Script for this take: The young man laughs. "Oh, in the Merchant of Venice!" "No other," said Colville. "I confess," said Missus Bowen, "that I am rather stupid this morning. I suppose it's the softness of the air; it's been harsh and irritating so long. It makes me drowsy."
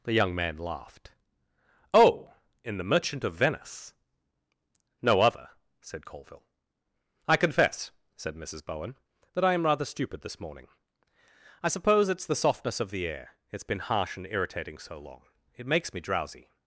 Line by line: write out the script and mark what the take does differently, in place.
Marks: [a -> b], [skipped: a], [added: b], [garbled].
The young man [laughs. -> laughed] "Oh, in the Merchant of Venice!" "No other," said Colville. "I confess," said Missus Bowen, "that I am rather stupid this morning. I suppose it's the softness of the air; it's been harsh and irritating so long. It makes me drowsy."